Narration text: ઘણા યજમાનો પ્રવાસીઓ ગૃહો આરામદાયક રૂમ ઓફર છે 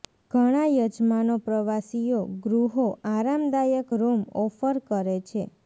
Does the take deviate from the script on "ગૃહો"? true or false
false